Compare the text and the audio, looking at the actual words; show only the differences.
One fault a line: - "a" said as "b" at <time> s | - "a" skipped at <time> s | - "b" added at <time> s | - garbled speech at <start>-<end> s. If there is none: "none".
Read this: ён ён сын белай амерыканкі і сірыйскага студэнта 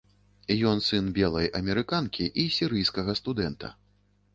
- "ён" skipped at 0.8 s